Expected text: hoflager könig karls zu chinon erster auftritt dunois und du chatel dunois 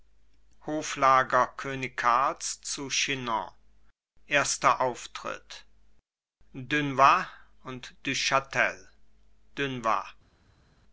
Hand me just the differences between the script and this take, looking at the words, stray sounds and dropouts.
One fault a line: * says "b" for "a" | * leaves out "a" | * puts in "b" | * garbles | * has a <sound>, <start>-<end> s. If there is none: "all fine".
all fine